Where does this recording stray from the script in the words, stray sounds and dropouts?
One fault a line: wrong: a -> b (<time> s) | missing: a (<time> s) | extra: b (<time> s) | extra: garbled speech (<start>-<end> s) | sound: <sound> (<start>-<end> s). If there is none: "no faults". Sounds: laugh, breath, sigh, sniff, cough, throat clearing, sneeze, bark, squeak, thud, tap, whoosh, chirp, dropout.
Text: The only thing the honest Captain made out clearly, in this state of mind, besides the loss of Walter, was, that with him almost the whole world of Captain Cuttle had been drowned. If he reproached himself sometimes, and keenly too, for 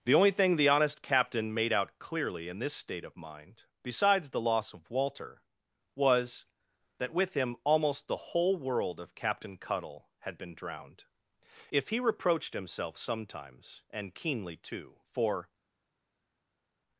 no faults